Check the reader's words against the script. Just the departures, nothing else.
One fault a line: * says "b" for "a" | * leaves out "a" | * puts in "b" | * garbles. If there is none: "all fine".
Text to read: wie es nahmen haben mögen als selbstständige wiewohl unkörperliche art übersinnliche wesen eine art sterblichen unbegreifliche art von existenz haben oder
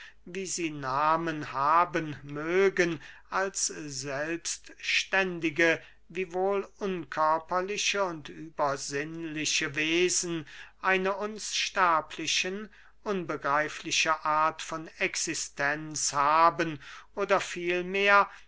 * says "sie" for "es"
* says "und" for "art"
* says "uns" for "art"